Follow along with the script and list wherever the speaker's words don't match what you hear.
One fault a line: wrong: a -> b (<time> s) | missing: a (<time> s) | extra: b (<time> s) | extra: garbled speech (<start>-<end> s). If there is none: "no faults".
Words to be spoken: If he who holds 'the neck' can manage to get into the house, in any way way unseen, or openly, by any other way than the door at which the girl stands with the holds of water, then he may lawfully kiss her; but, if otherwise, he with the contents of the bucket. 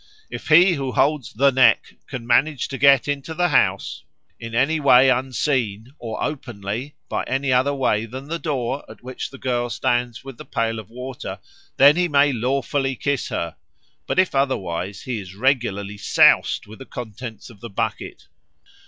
missing: way (5.1 s)
wrong: holds -> pail (10.4 s)
extra: is regularly soused (15.2 s)